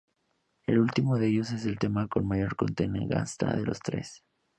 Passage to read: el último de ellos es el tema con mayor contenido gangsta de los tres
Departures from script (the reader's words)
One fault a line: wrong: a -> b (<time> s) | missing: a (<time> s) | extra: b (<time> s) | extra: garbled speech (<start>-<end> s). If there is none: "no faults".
no faults